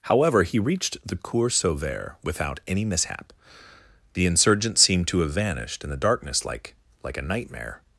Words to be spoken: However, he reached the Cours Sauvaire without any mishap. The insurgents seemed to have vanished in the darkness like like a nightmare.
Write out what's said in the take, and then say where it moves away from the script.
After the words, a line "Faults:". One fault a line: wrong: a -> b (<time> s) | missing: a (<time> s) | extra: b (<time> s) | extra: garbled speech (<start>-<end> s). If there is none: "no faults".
However, he reached the Cours Sauvaire without any mishap. The insurgents seemed to have vanished in the darkness like like a nightmare.
Faults:
no faults